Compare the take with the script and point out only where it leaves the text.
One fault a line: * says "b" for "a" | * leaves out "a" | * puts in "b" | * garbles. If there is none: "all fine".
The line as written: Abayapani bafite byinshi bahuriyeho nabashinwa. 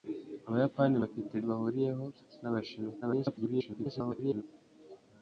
* leaves out "byinshi"
* garbles